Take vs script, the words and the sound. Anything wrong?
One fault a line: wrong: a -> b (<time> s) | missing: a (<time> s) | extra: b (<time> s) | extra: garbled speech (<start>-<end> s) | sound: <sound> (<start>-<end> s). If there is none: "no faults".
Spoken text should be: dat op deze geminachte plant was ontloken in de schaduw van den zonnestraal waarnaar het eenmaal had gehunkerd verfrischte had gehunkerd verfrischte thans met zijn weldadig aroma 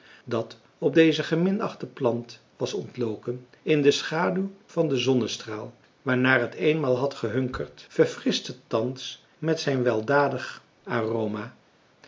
missing: had gehunkerd verfrischte (8.5 s)